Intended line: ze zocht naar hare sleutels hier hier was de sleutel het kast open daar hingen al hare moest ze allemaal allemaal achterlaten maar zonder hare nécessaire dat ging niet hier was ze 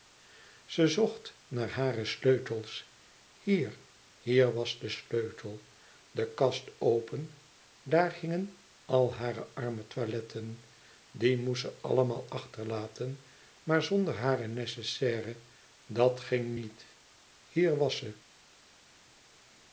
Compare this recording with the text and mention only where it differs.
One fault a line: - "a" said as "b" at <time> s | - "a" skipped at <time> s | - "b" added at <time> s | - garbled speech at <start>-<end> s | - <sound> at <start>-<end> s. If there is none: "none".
- "het" said as "de" at 6.1 s
- "arme toiletten die" added at 9.5 s
- "allemaal" skipped at 12.3 s